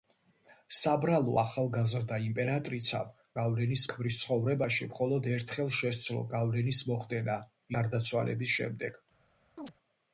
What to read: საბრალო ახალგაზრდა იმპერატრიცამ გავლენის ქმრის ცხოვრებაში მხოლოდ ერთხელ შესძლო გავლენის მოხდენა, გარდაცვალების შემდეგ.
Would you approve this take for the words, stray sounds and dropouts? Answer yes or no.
no